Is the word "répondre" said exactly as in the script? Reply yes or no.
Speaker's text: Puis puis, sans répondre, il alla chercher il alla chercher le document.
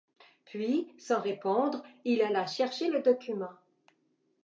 yes